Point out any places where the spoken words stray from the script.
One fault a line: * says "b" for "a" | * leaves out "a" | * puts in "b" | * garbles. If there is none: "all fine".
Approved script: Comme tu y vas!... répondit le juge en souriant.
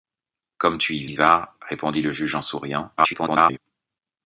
* puts in "y"
* garbles